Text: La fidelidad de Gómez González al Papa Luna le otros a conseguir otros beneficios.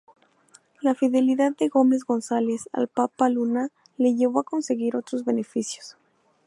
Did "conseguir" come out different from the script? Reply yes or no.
no